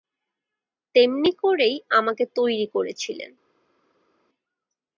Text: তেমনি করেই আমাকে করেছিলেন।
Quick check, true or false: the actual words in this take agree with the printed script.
false